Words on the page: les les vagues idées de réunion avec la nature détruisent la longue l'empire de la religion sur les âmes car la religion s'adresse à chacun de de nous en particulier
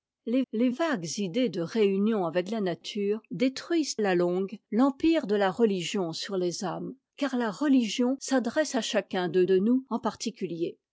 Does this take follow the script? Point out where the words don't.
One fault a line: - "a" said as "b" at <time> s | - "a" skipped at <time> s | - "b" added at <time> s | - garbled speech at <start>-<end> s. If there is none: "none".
none